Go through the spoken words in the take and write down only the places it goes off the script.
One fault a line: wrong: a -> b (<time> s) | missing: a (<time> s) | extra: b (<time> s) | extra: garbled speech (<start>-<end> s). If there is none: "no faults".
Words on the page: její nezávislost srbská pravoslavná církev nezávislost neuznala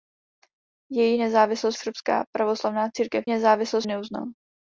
no faults